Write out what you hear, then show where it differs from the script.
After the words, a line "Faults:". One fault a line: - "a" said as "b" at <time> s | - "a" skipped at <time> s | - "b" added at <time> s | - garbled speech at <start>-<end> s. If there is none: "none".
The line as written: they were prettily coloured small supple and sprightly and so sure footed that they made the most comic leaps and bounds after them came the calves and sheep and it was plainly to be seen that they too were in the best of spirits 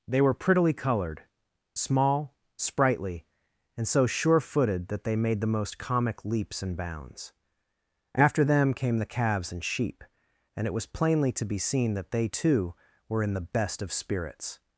they were prettily coloured small sprightly and so sure footed that they made the most comic leaps and bounds after them came the calves and sheep and it was plainly to be seen that they too were in the best of spirits
Faults:
- "supple and" skipped at 2.4 s